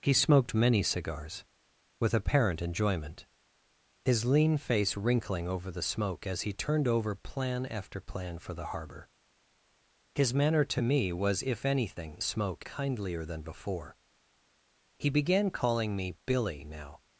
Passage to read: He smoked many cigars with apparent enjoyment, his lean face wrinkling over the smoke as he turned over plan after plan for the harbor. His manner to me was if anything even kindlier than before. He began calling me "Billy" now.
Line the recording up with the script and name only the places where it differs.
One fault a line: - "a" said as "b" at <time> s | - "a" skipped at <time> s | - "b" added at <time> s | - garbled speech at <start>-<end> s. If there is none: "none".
- "even" said as "smoke" at 12.2 s